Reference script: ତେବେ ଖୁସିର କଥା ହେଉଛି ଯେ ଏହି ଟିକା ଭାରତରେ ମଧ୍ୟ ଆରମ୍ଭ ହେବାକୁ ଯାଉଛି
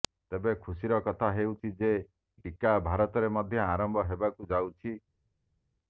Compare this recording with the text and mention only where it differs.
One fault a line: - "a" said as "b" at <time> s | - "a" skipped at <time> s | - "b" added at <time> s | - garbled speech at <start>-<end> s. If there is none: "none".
- "ଏହି" skipped at 1.9 s